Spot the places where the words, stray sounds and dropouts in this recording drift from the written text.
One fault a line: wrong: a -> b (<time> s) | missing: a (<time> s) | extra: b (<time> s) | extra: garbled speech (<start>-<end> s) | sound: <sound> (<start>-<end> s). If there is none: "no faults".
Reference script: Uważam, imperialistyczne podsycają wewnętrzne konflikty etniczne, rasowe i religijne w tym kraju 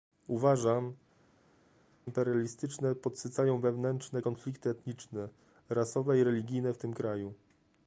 no faults